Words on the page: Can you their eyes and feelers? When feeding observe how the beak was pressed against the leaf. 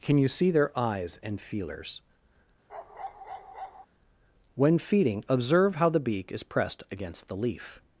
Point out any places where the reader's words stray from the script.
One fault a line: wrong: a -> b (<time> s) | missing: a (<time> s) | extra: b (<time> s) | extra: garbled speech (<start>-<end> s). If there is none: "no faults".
extra: see (0.3 s)
wrong: was -> is (6.3 s)